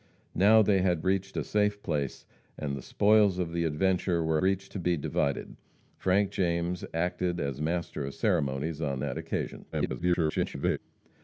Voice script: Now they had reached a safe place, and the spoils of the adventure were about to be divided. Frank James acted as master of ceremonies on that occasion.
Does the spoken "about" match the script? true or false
false